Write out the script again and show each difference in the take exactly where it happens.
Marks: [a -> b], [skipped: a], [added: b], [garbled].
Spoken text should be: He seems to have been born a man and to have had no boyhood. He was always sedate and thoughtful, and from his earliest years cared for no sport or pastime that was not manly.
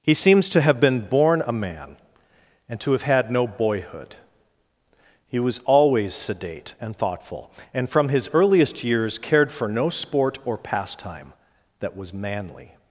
He seems to have been born a man and to have had no boyhood. He was always sedate and thoughtful, and from his earliest years cared for no sport or pastime that was [skipped: not] manly.